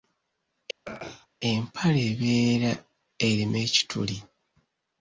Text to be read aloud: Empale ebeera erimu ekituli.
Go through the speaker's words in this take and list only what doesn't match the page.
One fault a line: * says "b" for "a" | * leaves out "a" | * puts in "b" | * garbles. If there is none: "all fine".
all fine